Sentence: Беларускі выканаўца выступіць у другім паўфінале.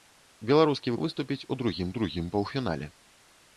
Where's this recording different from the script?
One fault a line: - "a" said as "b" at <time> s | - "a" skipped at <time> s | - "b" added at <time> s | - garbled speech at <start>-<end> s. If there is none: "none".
- "выканаўца" skipped at 0.9 s
- "другім" added at 2.0 s